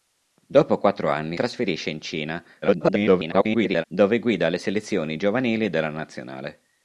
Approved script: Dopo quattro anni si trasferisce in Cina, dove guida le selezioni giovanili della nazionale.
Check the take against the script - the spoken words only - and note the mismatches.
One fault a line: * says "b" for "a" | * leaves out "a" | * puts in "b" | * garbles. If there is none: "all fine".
* leaves out "si"
* garbles